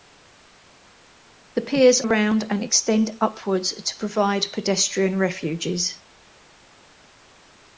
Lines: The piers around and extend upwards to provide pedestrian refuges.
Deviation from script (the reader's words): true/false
false